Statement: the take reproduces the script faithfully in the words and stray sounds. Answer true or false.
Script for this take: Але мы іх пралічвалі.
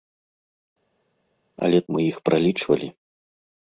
true